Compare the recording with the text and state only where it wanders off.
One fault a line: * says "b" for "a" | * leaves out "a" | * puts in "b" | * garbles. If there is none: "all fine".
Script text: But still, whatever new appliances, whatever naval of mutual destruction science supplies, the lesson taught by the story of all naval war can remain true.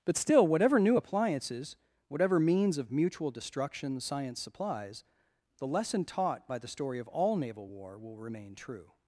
* says "means" for "naval"
* says "will" for "can"